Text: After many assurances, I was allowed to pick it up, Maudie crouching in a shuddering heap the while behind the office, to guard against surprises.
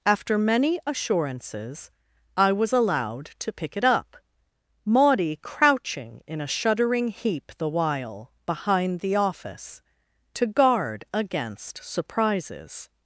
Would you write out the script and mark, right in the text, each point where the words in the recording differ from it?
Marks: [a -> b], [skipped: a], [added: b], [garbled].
After many assurances, I was allowed to pick it up, Maudie crouching in a shuddering heap the while behind the office, to guard against surprises.